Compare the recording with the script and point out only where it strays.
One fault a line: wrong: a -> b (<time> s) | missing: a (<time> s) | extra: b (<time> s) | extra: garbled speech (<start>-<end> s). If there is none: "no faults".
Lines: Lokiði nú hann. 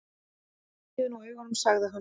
extra: augunum sagði (1.2 s)